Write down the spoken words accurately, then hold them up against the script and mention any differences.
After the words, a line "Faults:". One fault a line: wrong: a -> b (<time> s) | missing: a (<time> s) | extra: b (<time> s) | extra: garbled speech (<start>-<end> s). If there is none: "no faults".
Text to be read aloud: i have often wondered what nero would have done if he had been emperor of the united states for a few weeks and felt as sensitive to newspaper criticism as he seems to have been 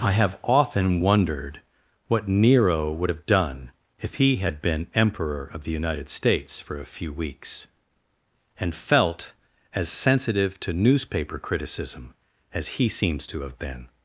i have often wondered what nero would have done if he had been emperor of the united states for a few weeks and felt as sensitive to newspaper criticism as he seems to have been
Faults:
no faults